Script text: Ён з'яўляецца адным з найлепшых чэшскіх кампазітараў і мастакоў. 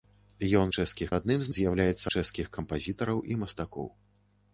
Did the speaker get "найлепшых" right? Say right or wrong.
wrong